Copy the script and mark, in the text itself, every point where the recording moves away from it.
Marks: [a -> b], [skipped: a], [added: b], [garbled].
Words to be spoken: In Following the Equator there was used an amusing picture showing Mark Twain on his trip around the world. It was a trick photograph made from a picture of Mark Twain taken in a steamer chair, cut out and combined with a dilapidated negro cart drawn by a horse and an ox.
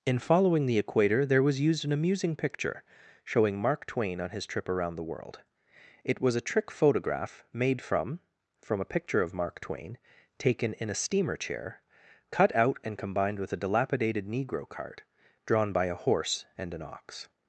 In Following the Equator there was used an amusing picture showing Mark Twain on his trip around the world. It was a trick photograph made from [added: from] a picture of Mark Twain taken in a steamer chair, cut out and combined with a dilapidated negro cart drawn by a horse and an ox.